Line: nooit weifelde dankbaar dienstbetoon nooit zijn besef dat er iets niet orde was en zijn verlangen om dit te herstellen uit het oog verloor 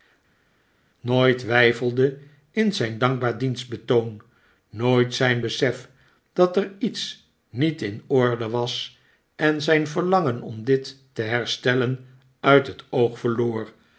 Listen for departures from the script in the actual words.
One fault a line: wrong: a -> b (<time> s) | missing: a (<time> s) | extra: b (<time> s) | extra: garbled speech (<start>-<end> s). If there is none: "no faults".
extra: in zijn (2.5 s)
extra: in (7.8 s)